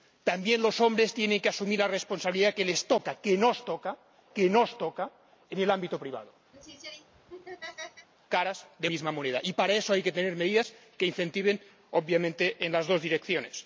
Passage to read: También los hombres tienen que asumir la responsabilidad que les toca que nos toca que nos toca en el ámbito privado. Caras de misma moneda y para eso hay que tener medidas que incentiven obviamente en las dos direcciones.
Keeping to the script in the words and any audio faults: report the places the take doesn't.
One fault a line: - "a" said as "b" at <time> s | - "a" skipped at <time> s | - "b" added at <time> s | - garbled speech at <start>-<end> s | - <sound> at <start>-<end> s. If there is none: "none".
- laugh at 6.5-8.1 s